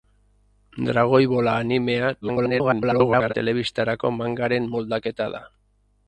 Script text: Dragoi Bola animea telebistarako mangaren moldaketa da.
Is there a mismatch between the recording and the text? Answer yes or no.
yes